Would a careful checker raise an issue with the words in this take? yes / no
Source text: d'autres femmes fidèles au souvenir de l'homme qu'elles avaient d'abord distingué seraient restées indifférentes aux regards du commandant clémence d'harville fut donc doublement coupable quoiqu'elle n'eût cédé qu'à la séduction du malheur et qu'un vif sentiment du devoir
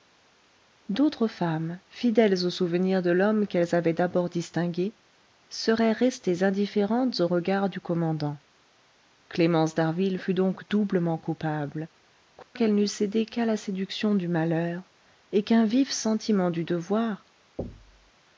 no